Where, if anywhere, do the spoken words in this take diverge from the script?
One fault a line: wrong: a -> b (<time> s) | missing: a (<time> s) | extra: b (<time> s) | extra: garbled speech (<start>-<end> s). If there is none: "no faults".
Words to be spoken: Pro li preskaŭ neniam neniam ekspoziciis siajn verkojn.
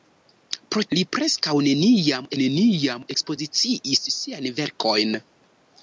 no faults